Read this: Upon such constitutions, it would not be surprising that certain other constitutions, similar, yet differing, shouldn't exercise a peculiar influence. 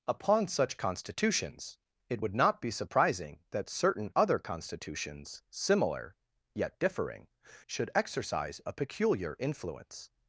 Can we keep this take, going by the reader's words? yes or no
no